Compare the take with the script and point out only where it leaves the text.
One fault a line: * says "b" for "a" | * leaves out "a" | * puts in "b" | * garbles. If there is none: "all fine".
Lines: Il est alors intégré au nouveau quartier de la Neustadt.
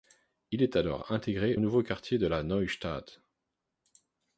* leaves out "au"